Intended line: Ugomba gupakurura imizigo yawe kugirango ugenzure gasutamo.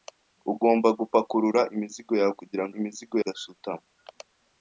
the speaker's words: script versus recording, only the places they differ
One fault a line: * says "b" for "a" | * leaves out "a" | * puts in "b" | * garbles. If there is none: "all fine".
* says "imizigo" for "ugenzure"